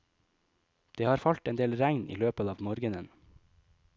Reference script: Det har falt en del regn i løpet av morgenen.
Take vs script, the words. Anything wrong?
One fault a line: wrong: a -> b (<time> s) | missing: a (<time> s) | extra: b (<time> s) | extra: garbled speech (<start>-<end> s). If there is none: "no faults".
no faults